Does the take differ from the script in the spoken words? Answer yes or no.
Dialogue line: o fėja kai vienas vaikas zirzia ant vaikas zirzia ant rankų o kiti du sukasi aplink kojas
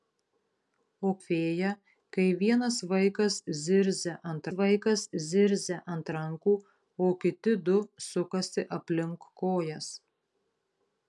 no